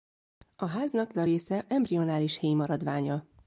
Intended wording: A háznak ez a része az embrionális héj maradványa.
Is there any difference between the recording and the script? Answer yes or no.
yes